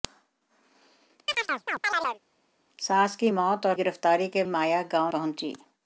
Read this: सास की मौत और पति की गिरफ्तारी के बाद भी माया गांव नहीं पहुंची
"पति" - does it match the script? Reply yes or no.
no